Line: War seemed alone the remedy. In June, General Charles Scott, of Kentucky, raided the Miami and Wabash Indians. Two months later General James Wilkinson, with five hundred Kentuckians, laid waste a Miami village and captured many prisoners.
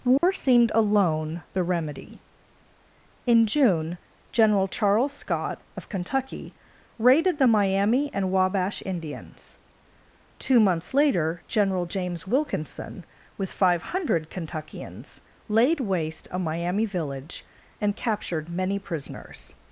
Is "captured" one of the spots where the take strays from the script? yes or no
no